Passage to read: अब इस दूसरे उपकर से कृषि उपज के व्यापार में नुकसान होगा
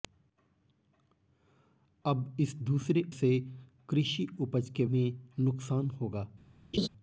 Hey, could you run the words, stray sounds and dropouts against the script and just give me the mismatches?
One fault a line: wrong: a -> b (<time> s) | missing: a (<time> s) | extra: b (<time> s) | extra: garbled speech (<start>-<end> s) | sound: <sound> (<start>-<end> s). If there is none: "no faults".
missing: उपकर (3.0 s)
missing: व्यापार (4.8 s)
sound: laugh (6.7-6.9 s)